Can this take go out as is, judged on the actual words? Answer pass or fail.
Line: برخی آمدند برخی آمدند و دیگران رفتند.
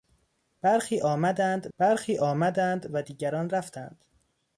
pass